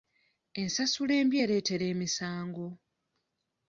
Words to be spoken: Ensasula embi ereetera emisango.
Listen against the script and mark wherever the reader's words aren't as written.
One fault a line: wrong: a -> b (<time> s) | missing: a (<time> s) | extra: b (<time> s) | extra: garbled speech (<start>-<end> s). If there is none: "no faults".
no faults